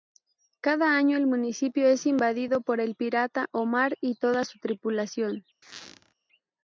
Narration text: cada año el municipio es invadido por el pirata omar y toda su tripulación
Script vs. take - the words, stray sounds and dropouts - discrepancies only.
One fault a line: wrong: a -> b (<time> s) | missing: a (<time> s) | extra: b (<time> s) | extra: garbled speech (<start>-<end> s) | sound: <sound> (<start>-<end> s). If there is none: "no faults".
sound: squeak (5.6-6.1 s)